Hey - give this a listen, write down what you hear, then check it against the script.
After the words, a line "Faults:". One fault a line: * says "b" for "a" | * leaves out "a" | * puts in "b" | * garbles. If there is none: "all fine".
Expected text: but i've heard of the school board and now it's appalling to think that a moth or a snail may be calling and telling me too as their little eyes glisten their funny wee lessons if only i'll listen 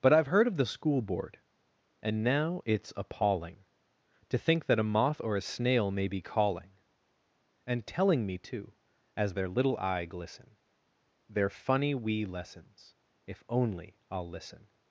but i've heard of the school board and now it's appalling to think that a moth or a snail may be calling and telling me too as their little eye glisten their funny wee lessons if only i'll listen
Faults:
* says "eye" for "eyes"